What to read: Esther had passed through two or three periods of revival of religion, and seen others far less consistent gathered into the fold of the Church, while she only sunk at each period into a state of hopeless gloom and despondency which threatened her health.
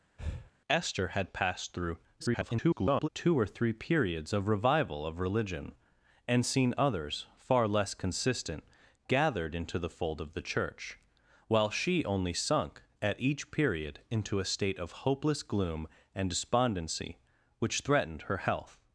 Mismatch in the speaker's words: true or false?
true